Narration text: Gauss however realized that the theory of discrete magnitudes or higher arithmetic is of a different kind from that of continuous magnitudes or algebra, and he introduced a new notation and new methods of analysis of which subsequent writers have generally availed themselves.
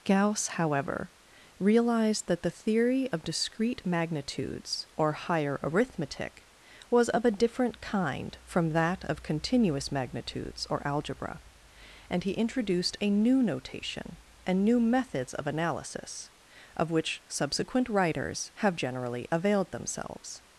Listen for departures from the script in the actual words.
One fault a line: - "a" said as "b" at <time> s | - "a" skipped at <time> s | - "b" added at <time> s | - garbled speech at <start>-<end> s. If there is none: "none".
- "is" said as "was" at 6.9 s